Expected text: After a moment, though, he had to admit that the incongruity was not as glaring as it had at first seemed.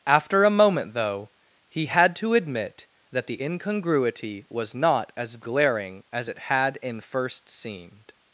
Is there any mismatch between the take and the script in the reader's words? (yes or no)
yes